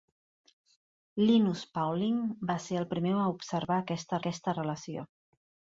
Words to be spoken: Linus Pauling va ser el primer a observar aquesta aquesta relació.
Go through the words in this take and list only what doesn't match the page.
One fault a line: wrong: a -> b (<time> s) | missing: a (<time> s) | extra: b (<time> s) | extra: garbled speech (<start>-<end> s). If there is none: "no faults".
no faults